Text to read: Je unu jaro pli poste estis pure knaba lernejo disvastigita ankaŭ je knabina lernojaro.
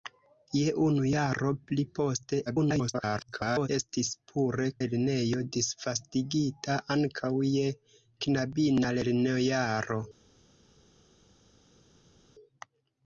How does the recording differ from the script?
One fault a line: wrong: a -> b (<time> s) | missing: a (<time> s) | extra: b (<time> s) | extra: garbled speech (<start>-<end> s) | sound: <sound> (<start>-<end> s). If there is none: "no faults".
extra: garbled speech (2.5-3.7 s)
missing: knaba (4.7 s)